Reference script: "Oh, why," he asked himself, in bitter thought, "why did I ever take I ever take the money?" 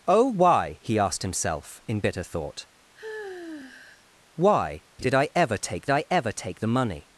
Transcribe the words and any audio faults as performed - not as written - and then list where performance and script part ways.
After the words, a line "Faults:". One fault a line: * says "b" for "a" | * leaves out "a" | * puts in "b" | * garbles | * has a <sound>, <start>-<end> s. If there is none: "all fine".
"Oh, why," he asked himself, in bitter thought, "why did I ever take I ever take the money?"
Faults:
* has a sigh, 3.0-4.1 s